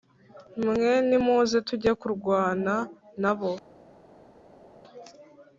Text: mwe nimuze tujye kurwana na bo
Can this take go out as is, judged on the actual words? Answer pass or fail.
pass